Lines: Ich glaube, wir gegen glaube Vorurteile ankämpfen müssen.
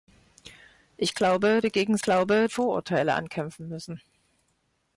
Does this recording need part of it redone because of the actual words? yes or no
no